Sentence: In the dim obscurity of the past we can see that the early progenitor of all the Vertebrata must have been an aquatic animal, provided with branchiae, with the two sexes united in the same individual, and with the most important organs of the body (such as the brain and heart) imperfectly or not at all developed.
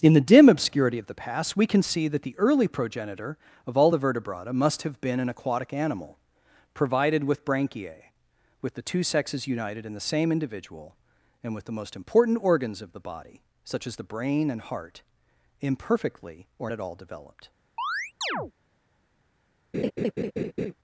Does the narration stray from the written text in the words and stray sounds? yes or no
yes